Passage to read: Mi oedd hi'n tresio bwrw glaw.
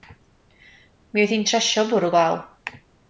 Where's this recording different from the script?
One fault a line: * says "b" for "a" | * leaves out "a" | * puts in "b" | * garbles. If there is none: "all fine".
all fine